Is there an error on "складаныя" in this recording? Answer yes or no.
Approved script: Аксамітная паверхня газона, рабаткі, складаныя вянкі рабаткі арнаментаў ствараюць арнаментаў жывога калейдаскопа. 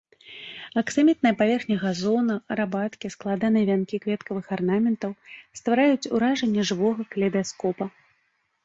no